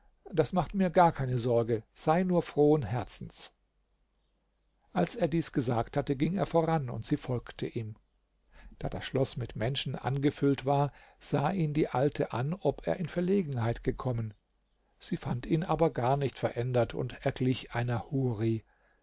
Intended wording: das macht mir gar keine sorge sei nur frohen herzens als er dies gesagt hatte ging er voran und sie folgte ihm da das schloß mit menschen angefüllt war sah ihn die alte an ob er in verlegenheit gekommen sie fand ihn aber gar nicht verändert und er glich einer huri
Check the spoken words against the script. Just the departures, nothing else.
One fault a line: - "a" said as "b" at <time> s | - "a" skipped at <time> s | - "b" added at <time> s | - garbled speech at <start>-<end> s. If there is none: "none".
none